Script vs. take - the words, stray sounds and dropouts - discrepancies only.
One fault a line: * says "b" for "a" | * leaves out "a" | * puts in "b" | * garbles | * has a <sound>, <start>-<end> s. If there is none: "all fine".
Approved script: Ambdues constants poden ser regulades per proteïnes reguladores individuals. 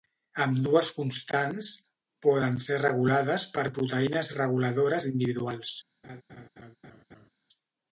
* has a laugh, 6.0-7.3 s